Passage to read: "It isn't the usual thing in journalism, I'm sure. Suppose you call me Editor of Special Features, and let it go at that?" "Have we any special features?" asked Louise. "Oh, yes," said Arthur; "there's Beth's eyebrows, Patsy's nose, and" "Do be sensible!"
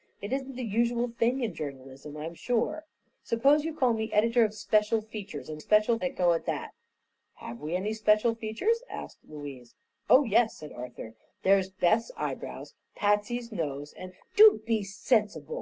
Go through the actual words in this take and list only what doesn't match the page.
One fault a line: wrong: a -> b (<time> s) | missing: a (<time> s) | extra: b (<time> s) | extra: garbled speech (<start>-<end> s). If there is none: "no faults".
wrong: let -> special (5.6 s)